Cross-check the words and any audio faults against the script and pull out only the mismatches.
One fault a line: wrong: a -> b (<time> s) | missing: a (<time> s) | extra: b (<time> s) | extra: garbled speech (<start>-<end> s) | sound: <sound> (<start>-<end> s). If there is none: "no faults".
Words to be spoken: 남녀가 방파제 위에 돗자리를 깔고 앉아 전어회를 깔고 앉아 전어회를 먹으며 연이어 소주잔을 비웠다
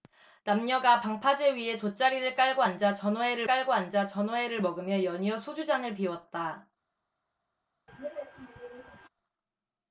sound: throat clearing (7.9-9.1 s)